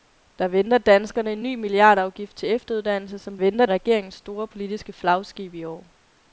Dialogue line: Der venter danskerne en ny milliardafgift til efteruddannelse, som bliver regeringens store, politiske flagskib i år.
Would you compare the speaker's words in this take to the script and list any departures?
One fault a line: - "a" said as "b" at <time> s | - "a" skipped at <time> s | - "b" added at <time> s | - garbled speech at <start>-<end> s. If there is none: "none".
- "bliver" said as "venter" at 3.3 s